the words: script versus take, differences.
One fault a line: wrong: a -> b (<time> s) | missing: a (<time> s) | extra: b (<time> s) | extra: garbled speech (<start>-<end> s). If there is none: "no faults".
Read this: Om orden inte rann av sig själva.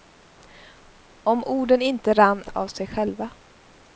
no faults